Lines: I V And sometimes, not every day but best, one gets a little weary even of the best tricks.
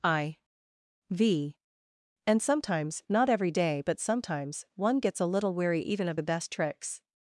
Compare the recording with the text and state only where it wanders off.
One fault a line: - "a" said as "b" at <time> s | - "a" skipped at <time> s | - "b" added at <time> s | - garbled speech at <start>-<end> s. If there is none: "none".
- "best" said as "sometimes" at 4.0 s